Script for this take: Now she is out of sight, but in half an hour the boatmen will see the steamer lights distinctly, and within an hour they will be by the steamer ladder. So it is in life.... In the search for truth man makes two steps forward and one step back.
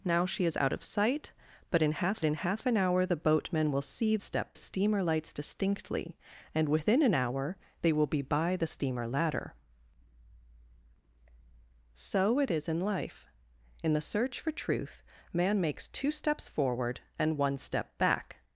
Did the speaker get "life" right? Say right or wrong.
right